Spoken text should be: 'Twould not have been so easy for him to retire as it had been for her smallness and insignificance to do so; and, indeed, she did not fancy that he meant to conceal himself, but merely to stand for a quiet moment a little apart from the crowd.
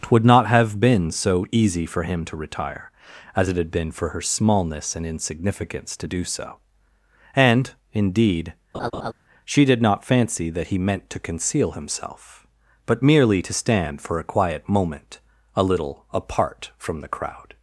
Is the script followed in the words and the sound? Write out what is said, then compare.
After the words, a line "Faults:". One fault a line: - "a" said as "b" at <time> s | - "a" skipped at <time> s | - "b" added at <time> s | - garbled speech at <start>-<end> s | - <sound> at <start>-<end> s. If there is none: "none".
'Twould not have been so easy for him to retire as it had been for her smallness and insignificance to do so; and, indeed, she did not fancy that he meant to conceal himself, but merely to stand for a quiet moment a little apart from the crowd.
Faults:
- laugh at 8.7-9.1 s